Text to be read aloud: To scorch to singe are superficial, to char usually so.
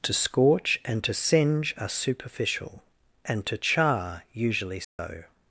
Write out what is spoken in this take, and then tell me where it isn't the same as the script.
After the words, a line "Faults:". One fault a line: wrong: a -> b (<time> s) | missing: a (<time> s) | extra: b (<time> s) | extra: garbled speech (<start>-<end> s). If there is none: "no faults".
To scorch and to singe are superficial, and to char usually so.
Faults:
extra: and (0.8 s)
extra: and (3.2 s)